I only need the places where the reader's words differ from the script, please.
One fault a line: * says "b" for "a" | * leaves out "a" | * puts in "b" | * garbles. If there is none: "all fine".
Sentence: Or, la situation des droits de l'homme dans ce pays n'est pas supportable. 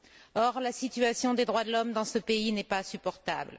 all fine